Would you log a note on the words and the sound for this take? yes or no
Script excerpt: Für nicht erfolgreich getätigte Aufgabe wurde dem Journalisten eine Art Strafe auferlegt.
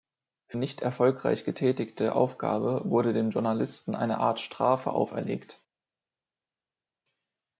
no